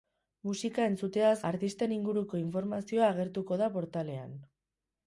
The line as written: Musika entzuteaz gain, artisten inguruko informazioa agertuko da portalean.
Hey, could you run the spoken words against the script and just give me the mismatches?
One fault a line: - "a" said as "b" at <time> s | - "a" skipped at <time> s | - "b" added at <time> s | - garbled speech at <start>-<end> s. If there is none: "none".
- "gain" skipped at 1.4 s